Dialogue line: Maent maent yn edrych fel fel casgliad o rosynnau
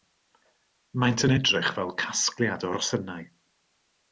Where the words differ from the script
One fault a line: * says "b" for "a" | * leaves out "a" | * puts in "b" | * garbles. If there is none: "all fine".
* leaves out "maent"
* leaves out "fel"